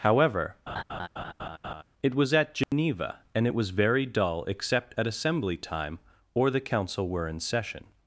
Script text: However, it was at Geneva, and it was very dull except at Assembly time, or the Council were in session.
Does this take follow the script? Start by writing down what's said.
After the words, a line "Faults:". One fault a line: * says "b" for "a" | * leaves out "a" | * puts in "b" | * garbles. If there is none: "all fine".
However, it was at Geneva, and it was very dull except at Assembly time, or the Council were in session.
Faults:
all fine